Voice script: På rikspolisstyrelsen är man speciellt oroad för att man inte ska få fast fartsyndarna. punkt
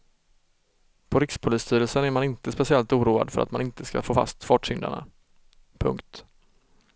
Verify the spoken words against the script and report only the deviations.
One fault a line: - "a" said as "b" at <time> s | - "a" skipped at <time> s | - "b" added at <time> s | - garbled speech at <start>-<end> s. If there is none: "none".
- "inte" added at 2.2 s